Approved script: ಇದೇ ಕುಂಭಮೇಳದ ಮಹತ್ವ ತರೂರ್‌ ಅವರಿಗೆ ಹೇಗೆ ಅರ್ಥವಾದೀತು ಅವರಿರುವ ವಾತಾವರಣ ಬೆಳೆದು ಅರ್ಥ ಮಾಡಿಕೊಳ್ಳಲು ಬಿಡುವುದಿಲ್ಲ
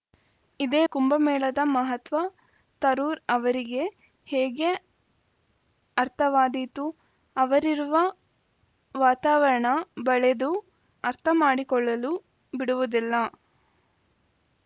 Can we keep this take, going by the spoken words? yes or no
yes